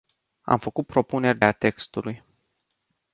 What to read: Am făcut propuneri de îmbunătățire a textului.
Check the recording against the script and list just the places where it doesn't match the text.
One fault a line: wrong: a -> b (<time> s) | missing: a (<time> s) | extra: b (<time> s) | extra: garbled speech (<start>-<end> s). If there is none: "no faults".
missing: de îmbunătățire (1.4 s)